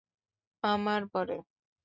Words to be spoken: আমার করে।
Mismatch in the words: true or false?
false